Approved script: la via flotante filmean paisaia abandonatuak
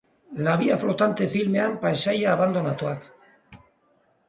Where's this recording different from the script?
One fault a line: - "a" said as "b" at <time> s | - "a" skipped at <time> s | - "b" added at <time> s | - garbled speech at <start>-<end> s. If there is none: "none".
none